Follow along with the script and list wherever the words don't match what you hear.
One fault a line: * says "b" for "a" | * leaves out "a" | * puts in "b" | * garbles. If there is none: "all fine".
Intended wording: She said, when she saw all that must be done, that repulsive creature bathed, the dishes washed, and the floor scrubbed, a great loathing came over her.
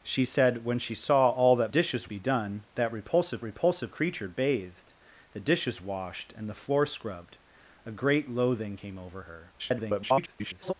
* says "dishes" for "must"
* puts in "repulsive"
* garbles